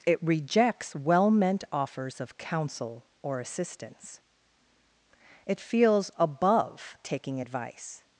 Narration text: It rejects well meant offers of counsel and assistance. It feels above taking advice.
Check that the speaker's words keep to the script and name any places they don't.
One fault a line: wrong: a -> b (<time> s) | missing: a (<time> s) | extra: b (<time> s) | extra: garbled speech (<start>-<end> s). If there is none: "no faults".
wrong: and -> or (3.2 s)